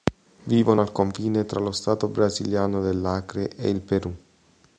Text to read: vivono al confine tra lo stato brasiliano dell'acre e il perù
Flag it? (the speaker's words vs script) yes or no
no